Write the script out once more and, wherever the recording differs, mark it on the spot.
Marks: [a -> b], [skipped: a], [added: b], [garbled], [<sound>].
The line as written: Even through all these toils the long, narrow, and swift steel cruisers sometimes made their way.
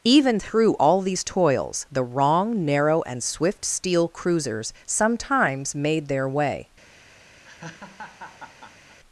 Even through all these toils the [long, -> wrong] narrow, and swift steel cruisers sometimes made their way. [laugh]